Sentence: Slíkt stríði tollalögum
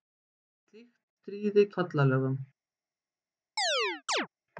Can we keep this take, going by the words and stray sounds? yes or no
no